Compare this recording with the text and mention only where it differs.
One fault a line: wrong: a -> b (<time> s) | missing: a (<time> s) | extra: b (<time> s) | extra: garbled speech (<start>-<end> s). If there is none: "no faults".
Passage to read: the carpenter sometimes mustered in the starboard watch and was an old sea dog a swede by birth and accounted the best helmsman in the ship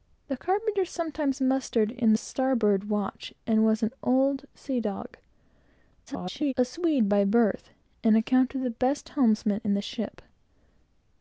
missing: the (2.1 s)
extra: garbled speech (6.1-6.5 s)